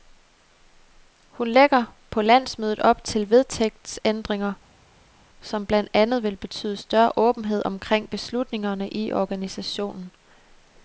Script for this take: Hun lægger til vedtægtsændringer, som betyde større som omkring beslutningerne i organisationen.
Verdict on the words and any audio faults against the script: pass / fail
fail